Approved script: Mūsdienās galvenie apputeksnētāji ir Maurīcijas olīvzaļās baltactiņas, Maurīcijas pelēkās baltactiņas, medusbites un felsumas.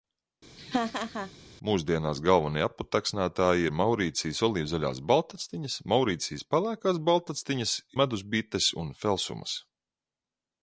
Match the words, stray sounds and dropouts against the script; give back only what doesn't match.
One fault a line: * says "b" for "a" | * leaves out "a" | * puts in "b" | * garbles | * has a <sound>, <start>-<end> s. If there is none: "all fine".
* has a laugh, 0.6-1.3 s